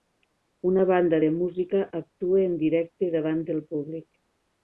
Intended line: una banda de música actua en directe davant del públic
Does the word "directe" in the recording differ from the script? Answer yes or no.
no